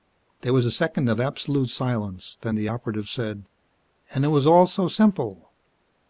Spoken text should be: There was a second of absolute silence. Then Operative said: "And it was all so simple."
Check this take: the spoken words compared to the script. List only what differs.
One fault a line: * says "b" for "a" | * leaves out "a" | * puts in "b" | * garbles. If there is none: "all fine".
* puts in "the"